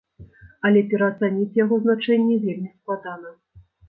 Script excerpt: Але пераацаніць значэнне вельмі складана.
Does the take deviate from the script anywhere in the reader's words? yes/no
yes